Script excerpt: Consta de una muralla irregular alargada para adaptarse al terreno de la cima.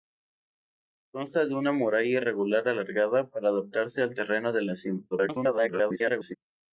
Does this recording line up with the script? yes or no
no